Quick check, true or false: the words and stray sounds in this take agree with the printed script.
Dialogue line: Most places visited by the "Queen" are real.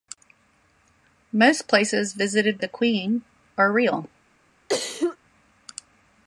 false